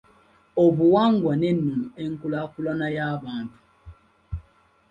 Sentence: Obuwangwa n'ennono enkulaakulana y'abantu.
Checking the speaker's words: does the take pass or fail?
pass